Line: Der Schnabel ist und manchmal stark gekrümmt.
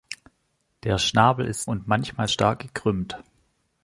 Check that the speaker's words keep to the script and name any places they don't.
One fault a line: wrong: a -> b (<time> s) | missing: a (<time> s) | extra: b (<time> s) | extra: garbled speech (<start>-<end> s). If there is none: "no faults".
no faults